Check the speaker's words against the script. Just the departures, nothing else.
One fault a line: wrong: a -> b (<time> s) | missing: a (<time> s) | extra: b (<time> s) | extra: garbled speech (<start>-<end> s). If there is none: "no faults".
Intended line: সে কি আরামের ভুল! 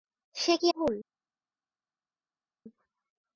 missing: আরামের (0.7 s)